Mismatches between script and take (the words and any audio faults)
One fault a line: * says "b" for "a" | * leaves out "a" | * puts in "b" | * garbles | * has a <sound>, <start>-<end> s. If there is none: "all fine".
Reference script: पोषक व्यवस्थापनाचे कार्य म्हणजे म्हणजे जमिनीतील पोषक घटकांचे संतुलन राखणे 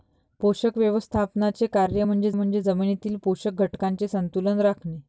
all fine